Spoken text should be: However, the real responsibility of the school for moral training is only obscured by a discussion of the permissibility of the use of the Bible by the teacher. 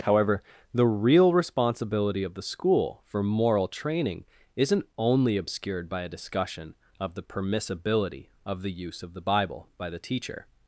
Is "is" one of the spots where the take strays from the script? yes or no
yes